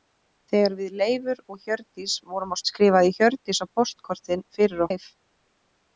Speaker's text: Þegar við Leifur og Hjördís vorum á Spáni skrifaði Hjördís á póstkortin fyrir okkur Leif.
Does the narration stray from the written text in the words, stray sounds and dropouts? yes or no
yes